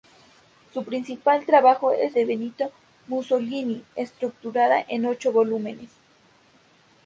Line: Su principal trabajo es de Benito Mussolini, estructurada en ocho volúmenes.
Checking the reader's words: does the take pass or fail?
pass